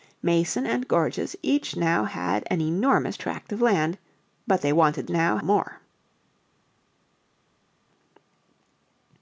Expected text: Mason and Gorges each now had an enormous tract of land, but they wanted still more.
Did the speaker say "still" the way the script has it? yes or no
no